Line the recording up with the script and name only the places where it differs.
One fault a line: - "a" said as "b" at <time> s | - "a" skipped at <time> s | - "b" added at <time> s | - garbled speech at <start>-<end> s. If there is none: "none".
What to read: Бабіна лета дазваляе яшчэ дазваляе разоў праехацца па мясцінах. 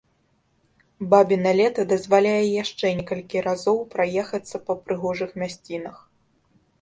- "дазваляе" said as "некалькі" at 3.0 s
- "прыгожых" added at 4.9 s